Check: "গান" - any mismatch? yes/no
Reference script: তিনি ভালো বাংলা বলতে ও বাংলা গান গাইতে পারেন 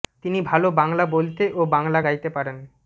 yes